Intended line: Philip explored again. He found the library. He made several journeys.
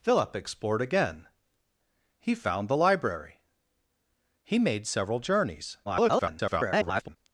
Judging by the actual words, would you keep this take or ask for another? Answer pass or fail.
fail